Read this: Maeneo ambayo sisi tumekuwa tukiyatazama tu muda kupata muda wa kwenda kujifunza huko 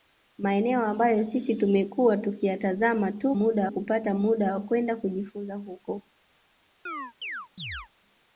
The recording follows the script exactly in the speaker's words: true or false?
true